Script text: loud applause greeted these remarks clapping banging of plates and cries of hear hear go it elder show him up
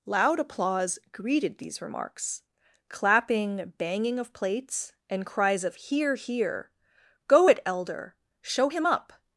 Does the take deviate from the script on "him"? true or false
false